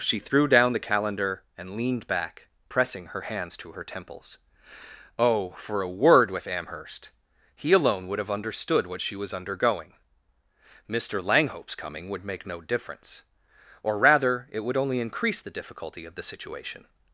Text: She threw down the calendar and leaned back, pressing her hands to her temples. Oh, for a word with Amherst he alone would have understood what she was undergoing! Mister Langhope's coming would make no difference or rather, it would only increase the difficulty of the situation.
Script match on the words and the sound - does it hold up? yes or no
yes